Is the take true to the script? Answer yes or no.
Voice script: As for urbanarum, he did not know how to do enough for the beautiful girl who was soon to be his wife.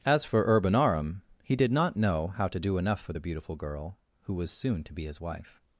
yes